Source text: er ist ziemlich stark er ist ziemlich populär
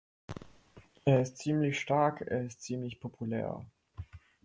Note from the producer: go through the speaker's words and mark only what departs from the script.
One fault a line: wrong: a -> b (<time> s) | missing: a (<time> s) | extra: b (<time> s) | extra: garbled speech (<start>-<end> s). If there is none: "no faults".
no faults